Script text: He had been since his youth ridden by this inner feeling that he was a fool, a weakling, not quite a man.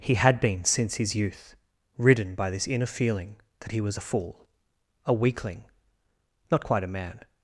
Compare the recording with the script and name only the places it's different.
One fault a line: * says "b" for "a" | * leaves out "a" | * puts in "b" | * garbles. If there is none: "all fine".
all fine